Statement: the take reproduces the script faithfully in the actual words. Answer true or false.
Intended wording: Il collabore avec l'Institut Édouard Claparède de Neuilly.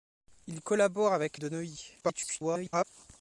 false